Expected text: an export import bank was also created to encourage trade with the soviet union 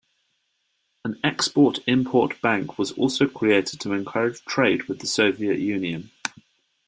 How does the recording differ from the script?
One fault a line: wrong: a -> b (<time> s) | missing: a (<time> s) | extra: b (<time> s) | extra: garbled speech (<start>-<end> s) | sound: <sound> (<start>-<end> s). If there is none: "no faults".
no faults